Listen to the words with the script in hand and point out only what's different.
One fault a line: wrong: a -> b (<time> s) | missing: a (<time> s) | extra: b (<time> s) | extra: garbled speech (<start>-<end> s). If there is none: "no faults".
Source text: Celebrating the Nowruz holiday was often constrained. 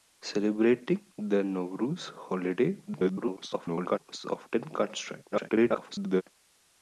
extra: garbled speech (2.9-4.0 s)
extra: garbled speech (5.3-6.2 s)